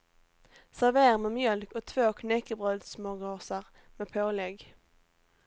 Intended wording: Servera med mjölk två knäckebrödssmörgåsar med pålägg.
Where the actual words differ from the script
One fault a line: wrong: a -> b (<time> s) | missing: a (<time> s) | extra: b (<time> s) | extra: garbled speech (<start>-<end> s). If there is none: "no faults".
extra: och (1.7 s)